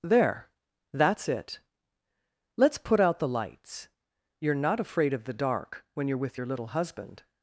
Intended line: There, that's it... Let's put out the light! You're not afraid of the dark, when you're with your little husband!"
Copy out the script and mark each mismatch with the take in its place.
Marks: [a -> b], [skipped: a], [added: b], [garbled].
There, that's it... Let's put out the [light! -> lights] You're not afraid of the dark, when you're with your little husband!"